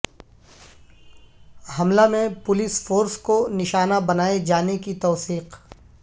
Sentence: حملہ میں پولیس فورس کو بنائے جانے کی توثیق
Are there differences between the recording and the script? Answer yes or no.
yes